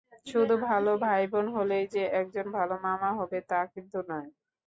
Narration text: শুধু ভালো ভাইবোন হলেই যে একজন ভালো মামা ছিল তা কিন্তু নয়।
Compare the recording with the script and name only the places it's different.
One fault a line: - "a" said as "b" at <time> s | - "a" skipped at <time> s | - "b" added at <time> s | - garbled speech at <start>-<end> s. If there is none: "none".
- "ছিল" said as "হবে" at 3.2 s